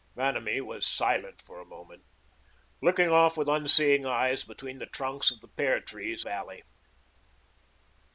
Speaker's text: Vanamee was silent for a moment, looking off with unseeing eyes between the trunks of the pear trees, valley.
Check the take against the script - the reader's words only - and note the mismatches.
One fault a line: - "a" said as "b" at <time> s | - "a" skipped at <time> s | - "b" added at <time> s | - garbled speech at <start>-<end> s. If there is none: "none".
none